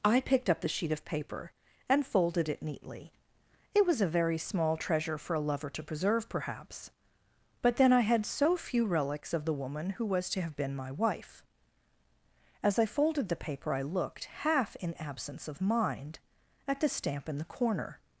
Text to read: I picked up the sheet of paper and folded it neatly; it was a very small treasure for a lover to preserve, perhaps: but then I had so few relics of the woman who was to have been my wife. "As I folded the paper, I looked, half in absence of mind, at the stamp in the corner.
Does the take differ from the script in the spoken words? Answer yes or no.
no